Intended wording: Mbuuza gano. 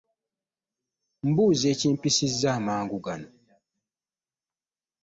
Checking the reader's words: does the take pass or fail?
fail